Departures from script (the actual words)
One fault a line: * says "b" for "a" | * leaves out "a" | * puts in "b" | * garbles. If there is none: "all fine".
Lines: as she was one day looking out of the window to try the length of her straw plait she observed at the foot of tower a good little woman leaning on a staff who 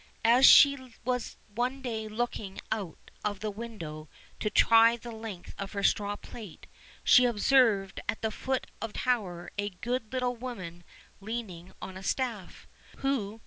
all fine